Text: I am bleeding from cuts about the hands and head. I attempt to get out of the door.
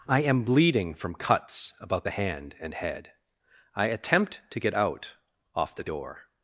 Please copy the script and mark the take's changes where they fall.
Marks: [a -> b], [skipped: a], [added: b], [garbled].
I am bleeding from cuts about the [hands -> hand] and head. I attempt to get out [of -> off] the door.